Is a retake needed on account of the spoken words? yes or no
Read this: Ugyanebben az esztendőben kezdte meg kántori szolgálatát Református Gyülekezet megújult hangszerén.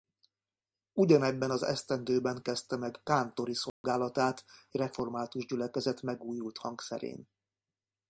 no